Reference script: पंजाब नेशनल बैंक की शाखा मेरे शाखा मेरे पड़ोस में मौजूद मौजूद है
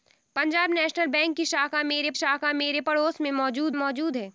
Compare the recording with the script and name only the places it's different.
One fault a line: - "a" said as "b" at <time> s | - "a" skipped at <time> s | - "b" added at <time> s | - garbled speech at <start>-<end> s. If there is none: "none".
none